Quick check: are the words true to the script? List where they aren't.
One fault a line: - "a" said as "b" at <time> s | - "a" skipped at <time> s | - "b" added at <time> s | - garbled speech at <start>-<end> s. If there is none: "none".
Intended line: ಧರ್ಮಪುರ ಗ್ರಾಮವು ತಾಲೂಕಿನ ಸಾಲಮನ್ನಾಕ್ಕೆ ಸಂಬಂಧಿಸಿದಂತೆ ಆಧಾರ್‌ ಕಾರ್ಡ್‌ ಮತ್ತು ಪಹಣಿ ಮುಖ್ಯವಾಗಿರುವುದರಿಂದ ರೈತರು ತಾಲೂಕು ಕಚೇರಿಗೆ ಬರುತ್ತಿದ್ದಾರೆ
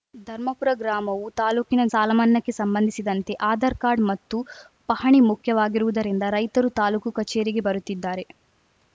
none